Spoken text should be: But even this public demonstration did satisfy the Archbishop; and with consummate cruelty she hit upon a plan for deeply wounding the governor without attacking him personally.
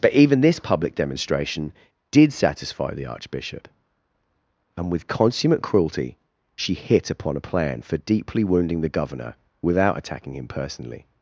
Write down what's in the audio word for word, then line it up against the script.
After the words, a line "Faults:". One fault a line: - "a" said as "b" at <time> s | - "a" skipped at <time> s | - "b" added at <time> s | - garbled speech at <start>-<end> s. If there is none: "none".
But even this public demonstration did satisfy the Archbishop; and with consummate cruelty she hit upon a plan for deeply wounding the governor without attacking him personally.
Faults:
none